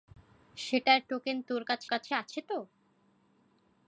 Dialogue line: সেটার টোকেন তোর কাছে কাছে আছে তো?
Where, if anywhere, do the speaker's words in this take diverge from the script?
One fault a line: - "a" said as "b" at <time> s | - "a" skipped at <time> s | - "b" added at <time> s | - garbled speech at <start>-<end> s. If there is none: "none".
none